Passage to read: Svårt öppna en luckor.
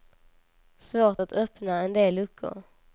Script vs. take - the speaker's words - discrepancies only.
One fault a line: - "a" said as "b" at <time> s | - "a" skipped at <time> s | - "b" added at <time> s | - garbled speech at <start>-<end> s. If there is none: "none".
- "att" added at 1.2 s
- "del" added at 1.9 s